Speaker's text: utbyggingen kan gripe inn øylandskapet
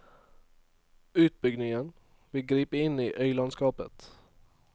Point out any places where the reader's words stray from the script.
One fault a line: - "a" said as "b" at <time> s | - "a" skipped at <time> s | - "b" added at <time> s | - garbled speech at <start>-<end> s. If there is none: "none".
- "kan" said as "vil" at 2.3 s
- "i" added at 3.0 s